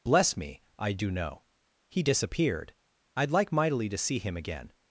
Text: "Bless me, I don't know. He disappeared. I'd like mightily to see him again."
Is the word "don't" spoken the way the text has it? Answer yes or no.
no